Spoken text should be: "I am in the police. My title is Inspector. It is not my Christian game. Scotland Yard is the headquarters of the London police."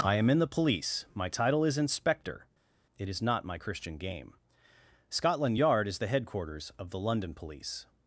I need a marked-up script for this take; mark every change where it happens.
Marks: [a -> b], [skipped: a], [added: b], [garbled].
"I am in the police. My title is Inspector. It is not my Christian game. Scotland Yard is the headquarters of the London police."